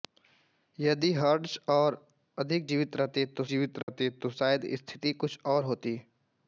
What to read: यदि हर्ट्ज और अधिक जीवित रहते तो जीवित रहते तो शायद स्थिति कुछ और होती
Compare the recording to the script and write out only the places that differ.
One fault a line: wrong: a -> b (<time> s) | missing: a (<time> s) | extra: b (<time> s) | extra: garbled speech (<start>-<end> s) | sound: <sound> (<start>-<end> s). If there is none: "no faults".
sound: dropout (3.8-3.9 s)